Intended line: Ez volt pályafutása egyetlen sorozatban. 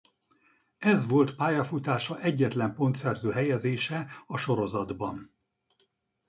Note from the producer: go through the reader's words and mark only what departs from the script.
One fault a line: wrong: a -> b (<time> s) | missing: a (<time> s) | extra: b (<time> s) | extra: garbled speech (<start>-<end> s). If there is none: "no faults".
extra: pontszerző helyezése a (2.8 s)